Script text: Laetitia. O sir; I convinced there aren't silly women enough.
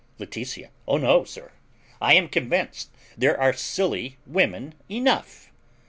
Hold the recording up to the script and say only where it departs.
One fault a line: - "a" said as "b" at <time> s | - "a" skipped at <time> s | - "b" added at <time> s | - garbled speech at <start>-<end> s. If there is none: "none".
- "no" added at 1.0 s
- "am" added at 2.1 s
- "aren't" said as "are" at 3.4 s